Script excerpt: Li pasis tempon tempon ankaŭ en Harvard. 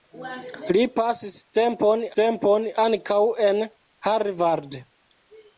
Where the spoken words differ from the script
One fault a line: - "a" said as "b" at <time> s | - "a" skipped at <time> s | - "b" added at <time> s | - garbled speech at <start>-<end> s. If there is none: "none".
none